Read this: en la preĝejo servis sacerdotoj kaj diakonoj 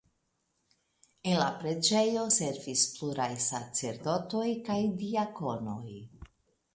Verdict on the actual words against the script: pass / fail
fail